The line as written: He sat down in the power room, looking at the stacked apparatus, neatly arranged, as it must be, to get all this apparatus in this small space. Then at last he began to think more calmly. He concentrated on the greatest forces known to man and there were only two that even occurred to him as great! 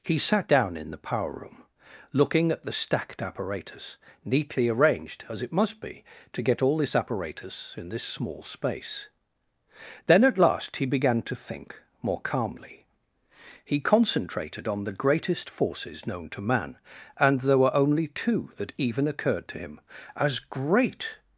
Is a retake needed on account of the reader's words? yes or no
no